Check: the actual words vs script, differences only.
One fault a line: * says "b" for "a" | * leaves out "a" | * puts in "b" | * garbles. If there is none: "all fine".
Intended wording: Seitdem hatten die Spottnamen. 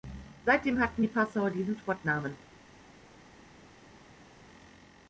* puts in "Passauer diesen"